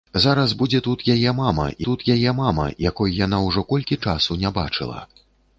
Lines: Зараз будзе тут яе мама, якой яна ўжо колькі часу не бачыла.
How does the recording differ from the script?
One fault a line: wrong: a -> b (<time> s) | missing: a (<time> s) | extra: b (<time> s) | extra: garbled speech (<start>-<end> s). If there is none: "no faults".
extra: тут яе мама (1.9 s)